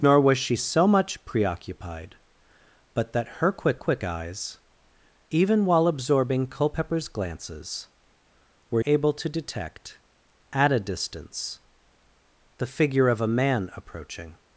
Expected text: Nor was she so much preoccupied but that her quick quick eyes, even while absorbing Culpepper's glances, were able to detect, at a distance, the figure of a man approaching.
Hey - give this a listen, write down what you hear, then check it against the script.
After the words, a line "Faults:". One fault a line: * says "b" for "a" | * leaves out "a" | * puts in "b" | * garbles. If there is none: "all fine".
Nor was she so much preoccupied but that her quick quick eyes, even while absorbing Culpepper's glances, were able to detect, at a distance, the figure of a man approaching.
Faults:
all fine